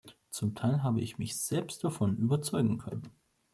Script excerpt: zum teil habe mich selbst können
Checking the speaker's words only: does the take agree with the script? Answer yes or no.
no